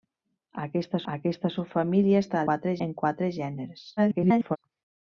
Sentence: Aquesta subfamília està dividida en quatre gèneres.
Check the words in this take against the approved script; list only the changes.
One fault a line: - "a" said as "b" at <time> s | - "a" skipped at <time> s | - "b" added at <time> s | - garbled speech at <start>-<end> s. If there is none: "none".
- "aquesta" added at 1.1 s
- "dividida" said as "quatre" at 2.5 s
- garbled speech at 4.0-4.6 s